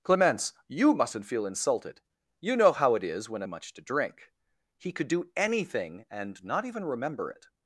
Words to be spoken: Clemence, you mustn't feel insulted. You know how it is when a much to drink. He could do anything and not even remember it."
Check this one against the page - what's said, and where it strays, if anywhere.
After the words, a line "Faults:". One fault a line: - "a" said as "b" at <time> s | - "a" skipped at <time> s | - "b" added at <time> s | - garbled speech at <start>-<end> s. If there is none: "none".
Clemence, you mustn't feel insulted. You know how it is when a much to drink. He could do anything and not even remember it."
Faults:
none